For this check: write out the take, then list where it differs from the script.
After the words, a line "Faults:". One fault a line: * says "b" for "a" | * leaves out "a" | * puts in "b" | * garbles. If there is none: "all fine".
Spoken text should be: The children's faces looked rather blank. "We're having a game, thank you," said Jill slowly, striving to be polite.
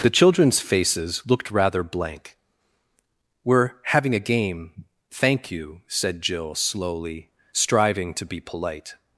The children's faces looked rather blank. "We're having a game, thank you," said Jill slowly, striving to be polite.
Faults:
all fine